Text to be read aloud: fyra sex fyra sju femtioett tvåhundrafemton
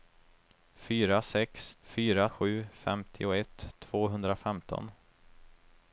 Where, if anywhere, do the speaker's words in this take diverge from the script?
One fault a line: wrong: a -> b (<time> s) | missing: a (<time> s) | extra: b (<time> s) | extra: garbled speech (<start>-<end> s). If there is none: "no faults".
no faults